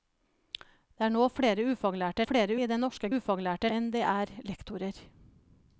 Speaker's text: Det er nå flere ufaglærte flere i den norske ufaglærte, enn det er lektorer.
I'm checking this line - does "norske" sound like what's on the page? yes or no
yes